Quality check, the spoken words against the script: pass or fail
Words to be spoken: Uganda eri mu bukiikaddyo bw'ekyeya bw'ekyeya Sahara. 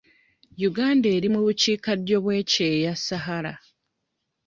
fail